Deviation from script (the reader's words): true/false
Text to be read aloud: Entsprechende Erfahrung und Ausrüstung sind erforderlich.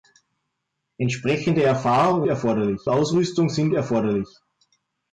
true